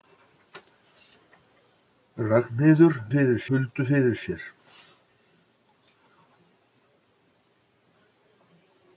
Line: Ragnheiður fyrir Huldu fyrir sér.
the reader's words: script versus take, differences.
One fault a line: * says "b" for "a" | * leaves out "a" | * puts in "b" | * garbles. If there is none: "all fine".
all fine